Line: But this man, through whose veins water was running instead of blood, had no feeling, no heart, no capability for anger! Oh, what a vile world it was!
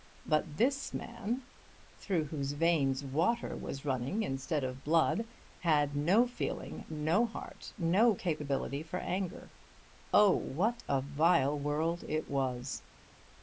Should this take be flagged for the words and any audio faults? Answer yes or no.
no